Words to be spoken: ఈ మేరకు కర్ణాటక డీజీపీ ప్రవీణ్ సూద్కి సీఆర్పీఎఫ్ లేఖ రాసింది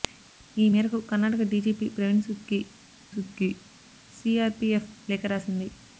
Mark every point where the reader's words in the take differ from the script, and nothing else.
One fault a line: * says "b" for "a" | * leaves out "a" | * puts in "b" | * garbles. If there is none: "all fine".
* puts in "సూద్కి"